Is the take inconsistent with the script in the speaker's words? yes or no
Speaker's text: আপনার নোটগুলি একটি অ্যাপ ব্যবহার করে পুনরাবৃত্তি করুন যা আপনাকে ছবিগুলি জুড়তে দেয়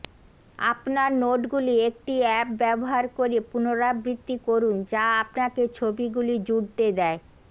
no